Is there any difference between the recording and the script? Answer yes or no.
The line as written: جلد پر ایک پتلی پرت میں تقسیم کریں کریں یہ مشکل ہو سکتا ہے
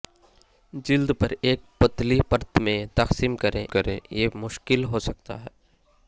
no